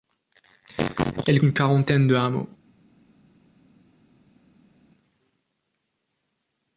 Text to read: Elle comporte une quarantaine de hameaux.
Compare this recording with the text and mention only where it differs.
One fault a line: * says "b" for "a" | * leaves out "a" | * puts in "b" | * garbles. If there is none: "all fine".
* leaves out "comporte"